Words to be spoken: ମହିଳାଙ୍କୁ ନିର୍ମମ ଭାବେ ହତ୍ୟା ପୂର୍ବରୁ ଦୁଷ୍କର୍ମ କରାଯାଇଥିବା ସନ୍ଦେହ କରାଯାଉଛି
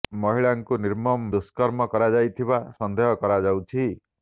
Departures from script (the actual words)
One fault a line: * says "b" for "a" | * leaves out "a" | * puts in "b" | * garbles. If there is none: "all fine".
* leaves out "ଭାବେ ହତ୍ୟା ପୂର୍ବରୁ"